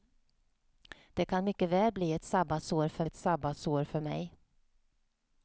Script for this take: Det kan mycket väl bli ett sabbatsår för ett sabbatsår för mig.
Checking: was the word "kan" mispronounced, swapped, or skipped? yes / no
no